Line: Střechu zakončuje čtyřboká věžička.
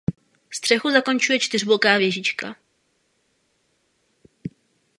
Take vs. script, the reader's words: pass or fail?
pass